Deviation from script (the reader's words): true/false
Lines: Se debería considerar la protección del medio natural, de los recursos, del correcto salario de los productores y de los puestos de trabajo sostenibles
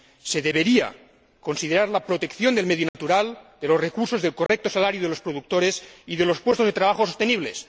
false